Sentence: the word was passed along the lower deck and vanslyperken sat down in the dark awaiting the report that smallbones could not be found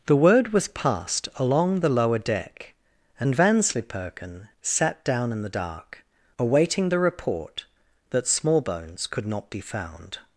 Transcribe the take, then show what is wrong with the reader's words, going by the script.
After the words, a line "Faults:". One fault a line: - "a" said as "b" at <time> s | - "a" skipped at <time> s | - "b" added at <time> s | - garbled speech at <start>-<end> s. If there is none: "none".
the word was passed along the lower deck and vanslyperken sat down in the dark awaiting the report that smallbones could not be found
Faults:
none